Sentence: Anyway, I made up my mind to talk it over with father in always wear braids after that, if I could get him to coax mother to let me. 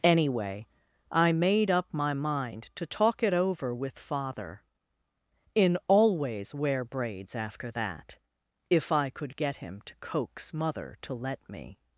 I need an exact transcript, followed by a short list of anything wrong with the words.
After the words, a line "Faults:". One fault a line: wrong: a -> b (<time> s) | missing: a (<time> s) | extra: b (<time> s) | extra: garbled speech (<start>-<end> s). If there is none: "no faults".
Anyway, I made up my mind to talk it over with father in always wear braids after that, if I could get him to coax mother to let me.
Faults:
no faults